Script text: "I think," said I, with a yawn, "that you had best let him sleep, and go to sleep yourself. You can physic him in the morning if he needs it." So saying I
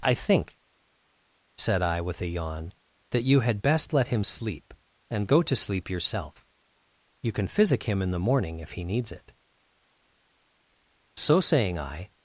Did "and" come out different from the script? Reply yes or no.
no